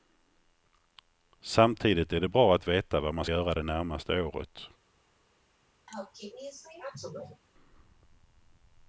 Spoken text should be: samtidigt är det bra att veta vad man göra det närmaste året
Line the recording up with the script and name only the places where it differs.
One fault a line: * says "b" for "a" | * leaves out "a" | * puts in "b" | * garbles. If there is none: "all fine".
all fine